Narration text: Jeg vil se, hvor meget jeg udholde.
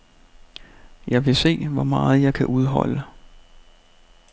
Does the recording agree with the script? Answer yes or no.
no